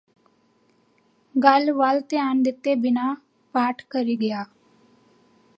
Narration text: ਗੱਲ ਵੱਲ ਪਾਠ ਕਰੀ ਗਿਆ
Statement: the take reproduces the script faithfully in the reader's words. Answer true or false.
false